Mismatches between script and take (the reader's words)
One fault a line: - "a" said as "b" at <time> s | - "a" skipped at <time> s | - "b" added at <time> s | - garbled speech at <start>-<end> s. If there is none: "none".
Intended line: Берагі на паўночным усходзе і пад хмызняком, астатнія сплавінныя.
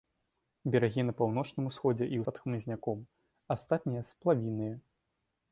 none